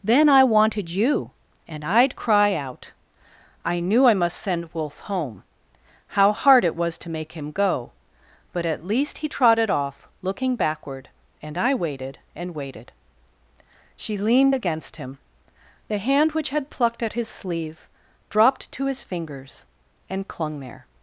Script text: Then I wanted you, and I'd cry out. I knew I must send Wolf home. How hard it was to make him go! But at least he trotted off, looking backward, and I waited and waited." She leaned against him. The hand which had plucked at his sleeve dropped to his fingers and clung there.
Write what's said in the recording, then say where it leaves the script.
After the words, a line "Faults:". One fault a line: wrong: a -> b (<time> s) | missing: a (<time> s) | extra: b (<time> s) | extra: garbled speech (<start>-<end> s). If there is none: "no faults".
Then I wanted you, and I'd cry out. I knew I must send Wolf home. How hard it was to make him go! But at least he trotted off, looking backward, and I waited and waited." She leaned against him. The hand which had plucked at his sleeve dropped to his fingers and clung there.
Faults:
no faults